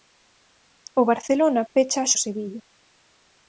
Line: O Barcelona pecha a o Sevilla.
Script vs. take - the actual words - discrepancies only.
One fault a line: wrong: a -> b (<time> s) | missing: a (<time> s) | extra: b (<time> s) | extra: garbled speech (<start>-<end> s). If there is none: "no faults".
no faults